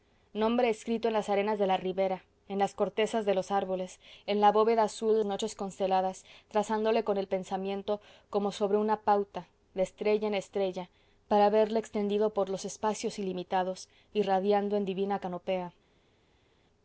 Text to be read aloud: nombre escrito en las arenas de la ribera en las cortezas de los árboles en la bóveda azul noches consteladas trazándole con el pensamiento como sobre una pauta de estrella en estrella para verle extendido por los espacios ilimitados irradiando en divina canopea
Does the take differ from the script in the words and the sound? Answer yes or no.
no